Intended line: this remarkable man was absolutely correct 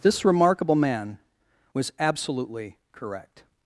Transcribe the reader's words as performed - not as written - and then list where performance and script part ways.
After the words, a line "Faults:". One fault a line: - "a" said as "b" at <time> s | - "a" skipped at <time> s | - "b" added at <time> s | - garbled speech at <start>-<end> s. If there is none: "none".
this remarkable man was absolutely correct
Faults:
none